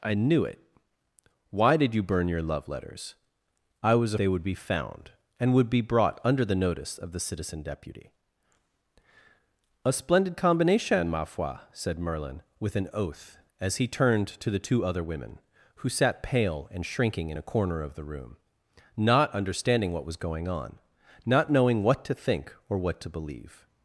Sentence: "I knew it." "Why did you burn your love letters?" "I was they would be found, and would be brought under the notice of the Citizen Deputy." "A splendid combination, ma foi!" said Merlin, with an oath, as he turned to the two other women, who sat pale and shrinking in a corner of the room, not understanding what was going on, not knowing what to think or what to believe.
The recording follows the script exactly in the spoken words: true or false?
true